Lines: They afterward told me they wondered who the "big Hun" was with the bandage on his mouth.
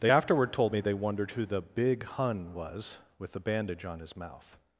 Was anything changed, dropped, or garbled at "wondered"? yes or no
no